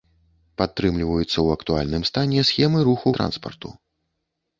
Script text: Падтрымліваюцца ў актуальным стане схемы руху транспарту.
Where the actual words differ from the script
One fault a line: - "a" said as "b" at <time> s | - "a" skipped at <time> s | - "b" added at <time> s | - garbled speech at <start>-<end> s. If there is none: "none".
none